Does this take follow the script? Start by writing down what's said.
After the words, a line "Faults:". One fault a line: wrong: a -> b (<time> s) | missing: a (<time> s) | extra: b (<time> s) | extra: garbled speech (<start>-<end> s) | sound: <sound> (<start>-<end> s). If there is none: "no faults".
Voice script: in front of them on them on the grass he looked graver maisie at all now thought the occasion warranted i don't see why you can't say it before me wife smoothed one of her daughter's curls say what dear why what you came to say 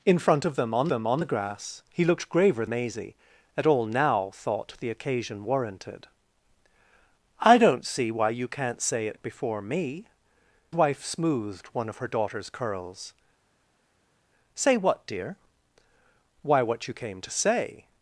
in front of them on them on the grass he looked graver maisie at all now thought the occasion warranted i don't see why you can't say it before me wife smoothed one of her daughter's curls say what dear why what you came to say
Faults:
no faults